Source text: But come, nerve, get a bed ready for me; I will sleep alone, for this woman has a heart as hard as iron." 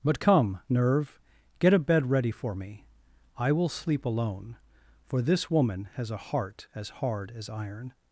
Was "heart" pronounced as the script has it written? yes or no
yes